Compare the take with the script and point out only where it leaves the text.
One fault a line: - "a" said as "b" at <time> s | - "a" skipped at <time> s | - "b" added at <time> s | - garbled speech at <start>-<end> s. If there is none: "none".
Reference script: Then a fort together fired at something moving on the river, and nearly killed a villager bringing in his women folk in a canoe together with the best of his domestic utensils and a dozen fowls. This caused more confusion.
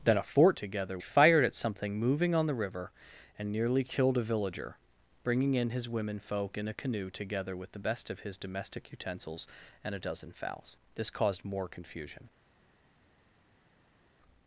none